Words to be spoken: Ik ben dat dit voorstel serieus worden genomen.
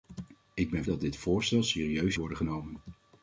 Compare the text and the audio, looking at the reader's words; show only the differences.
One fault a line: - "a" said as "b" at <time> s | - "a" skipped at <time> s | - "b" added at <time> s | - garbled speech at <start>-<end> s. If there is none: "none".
none